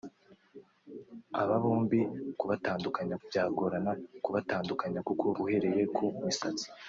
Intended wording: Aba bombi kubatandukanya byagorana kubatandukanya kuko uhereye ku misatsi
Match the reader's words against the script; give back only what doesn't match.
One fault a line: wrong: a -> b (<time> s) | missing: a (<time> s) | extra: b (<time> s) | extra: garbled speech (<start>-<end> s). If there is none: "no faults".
no faults